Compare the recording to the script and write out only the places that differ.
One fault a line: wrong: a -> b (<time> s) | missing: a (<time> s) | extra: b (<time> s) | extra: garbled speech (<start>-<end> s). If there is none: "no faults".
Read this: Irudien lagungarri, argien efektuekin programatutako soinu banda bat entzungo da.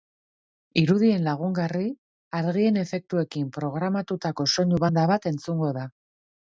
no faults